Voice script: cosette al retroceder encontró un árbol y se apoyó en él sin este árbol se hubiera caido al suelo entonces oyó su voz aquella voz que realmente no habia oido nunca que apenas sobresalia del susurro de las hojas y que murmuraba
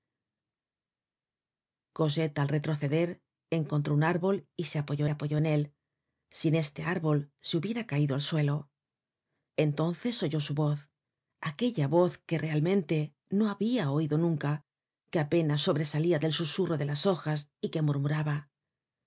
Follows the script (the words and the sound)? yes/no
no